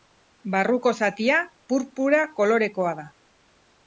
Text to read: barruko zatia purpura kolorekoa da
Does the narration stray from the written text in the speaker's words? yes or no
no